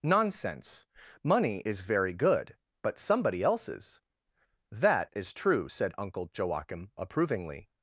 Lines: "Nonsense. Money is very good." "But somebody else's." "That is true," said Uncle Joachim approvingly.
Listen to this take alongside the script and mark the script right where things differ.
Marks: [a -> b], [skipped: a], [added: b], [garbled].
"Nonsense. Money is very good." "But somebody else's." "That is true," said Uncle Joachim approvingly.